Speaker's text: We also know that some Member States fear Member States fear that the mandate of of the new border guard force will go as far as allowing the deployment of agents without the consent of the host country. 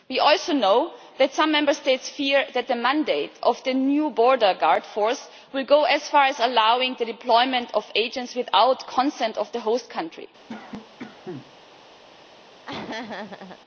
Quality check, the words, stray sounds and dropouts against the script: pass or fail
fail